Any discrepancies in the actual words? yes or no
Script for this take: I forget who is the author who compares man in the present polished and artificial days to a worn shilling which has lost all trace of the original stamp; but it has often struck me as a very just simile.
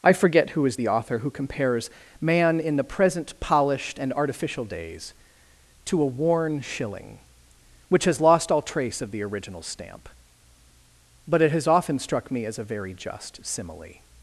no